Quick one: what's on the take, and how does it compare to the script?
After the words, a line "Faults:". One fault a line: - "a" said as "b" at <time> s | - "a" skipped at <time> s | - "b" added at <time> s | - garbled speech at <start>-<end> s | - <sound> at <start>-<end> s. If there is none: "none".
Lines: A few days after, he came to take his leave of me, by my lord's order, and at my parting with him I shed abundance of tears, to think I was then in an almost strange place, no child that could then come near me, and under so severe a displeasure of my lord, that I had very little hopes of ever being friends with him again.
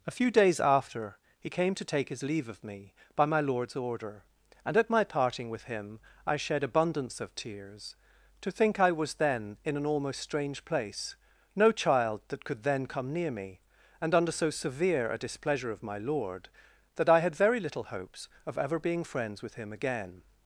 A few days after, he came to take his leave of me, by my lord's order, and at my parting with him I shed abundance of tears, to think I was then in an almost strange place, no child that could then come near me, and under so severe a displeasure of my lord, that I had very little hopes of ever being friends with him again.
Faults:
none